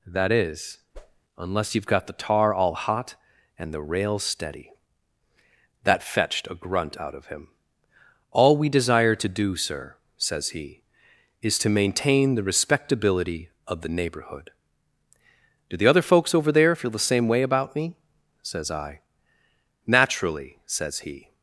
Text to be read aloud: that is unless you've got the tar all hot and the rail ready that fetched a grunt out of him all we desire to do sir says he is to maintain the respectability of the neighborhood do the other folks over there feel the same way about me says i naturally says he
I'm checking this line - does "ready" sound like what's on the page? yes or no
no